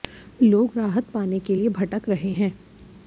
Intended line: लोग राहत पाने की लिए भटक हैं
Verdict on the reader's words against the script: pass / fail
fail